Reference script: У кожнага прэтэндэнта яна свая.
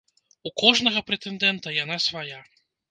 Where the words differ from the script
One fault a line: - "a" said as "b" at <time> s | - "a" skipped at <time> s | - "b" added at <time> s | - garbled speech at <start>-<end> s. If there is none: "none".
none